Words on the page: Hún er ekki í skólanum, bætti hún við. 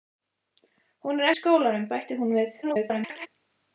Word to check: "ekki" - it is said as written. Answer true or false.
false